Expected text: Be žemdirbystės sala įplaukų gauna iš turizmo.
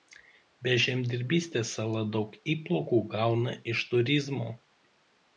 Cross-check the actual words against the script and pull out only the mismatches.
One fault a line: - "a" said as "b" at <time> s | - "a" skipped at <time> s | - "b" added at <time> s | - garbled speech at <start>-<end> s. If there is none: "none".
- "daug" added at 2.1 s